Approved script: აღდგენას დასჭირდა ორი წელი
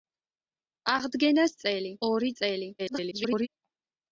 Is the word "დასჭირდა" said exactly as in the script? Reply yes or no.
no